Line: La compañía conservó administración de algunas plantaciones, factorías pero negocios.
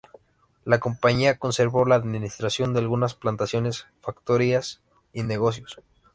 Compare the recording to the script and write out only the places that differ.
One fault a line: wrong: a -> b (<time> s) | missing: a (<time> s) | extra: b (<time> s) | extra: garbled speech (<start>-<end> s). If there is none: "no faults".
extra: la (1.8 s)
wrong: pero -> y (5.1 s)